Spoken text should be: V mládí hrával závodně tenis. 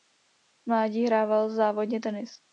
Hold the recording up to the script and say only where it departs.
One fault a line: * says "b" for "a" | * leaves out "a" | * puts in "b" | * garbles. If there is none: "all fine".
all fine